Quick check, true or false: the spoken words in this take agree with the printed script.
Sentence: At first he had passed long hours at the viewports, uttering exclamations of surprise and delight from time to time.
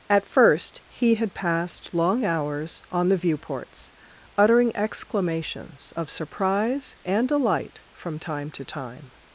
false